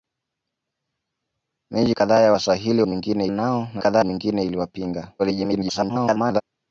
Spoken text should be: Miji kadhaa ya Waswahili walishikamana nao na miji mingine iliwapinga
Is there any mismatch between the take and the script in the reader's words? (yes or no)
yes